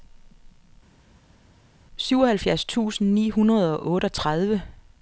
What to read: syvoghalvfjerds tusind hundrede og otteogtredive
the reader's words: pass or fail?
fail